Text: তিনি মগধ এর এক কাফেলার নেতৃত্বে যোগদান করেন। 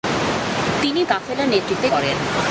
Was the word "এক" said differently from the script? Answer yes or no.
yes